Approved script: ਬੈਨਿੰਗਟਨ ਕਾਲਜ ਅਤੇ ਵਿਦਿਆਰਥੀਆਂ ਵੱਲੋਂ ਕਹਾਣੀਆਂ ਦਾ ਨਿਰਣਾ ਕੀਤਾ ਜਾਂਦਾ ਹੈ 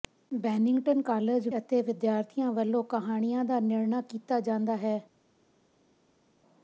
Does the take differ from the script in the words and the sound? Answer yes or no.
no